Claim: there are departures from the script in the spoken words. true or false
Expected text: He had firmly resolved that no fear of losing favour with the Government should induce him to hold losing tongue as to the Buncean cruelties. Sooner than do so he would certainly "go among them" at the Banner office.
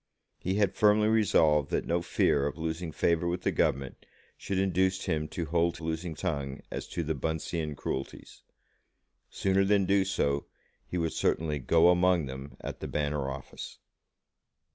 false